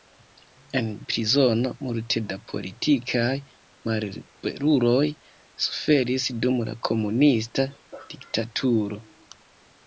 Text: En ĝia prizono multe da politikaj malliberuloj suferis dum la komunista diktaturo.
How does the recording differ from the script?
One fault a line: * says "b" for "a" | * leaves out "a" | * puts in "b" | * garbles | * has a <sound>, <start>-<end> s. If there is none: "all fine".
* leaves out "ĝia"